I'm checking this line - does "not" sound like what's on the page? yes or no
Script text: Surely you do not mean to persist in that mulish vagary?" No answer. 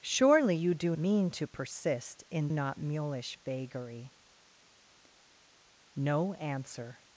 no